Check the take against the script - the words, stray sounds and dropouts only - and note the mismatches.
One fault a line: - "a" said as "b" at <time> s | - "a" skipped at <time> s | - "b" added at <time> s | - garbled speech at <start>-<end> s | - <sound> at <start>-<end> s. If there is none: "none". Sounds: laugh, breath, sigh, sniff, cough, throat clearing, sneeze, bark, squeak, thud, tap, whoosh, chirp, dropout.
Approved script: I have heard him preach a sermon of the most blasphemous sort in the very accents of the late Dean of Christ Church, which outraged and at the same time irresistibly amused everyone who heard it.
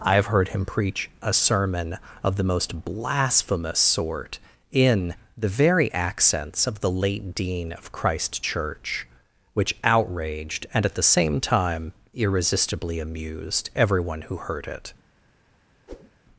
- whoosh at 15.9-16.1 s